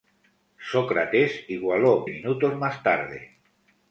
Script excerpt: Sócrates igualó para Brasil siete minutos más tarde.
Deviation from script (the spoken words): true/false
true